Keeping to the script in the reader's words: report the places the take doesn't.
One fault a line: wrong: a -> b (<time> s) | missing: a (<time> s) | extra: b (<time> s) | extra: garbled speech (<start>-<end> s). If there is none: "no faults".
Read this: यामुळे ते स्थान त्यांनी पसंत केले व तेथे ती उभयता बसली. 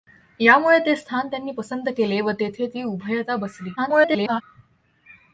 extra: garbled speech (3.8-4.4 s)